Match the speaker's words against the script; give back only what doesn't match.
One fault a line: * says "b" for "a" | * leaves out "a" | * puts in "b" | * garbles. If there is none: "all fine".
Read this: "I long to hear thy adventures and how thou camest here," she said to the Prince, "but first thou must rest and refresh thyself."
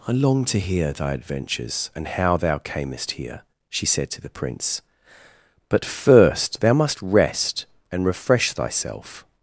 all fine